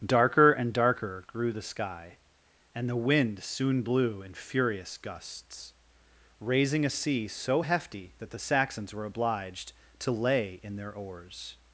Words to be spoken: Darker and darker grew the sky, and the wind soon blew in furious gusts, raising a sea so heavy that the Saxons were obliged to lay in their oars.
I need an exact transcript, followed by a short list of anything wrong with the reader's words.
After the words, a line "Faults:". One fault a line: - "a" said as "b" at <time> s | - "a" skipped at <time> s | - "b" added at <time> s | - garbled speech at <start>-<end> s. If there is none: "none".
Darker and darker grew the sky, and the wind soon blew in furious gusts, raising a sea so hefty that the Saxons were obliged to lay in their oars.
Faults:
- "heavy" said as "hefty" at 7.6 s